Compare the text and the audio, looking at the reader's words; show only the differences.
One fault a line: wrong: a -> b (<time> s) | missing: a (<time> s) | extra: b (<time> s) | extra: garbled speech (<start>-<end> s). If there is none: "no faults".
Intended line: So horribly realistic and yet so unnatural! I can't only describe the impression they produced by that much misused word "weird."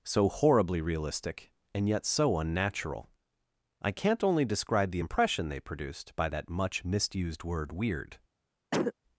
no faults